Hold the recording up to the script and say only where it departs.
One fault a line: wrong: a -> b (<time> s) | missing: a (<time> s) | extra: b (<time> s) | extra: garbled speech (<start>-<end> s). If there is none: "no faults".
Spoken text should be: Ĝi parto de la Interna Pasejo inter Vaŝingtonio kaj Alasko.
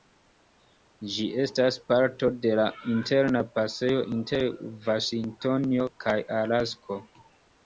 extra: estas (1.4 s)